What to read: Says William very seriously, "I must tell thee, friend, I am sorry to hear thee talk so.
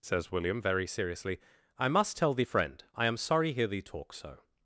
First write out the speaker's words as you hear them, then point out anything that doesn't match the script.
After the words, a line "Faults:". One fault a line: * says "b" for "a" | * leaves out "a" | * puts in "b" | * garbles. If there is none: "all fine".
Says William very seriously, "I must tell thee, friend, I am sorry hear thee talk so.
Faults:
* leaves out "to"